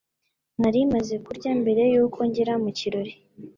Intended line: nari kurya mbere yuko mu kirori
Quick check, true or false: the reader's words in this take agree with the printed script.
false